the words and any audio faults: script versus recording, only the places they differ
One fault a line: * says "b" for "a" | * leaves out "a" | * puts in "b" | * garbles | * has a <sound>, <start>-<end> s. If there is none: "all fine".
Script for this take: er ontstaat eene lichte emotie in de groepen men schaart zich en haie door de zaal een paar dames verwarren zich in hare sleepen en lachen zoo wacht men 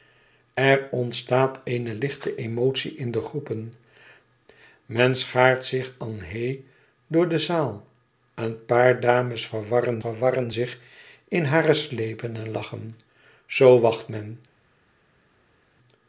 * puts in "verwarren"